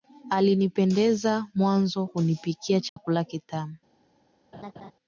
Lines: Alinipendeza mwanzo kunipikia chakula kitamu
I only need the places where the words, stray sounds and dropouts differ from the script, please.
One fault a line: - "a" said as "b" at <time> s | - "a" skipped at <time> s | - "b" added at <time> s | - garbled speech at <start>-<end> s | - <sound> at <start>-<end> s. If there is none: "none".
- dropout at 2.9-3.0 s
- laugh at 4.5-4.9 s